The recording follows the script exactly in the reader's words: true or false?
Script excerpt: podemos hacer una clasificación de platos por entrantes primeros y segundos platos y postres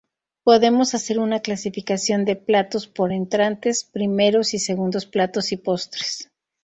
true